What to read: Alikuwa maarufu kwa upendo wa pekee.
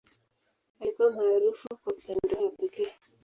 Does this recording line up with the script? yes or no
yes